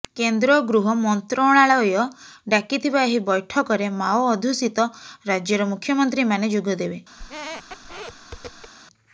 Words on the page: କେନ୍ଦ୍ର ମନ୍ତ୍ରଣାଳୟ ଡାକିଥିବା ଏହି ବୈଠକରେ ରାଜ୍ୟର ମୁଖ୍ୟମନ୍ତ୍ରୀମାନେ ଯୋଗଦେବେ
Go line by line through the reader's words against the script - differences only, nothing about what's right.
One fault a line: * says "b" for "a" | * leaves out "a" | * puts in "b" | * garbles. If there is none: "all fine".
* puts in "ଗୃହ"
* puts in "ମାଓ ଅଧ୍ୟୁଷିତ"